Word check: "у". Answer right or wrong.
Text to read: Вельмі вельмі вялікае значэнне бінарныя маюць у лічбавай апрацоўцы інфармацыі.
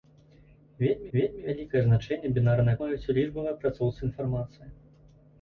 right